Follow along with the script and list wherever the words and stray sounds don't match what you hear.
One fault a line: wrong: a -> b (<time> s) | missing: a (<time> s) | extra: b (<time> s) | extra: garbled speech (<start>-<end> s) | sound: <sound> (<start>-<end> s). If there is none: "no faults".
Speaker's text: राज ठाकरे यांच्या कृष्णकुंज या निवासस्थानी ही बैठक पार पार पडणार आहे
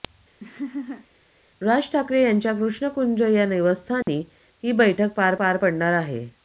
sound: laugh (0.4-1.1 s)
sound: dropout (4.0-4.1 s)